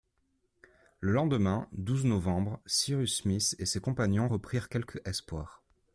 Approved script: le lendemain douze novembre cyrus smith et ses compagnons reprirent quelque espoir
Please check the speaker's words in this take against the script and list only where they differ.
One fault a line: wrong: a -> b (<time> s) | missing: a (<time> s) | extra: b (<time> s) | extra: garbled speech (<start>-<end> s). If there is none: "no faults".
no faults